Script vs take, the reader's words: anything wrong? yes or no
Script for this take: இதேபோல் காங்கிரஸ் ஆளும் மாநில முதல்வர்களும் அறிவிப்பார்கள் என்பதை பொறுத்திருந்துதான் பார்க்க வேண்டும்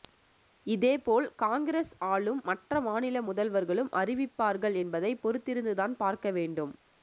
yes